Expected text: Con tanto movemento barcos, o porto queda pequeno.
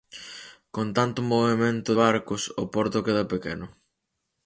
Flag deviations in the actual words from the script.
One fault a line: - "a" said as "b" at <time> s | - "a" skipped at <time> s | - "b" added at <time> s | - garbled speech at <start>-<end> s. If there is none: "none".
none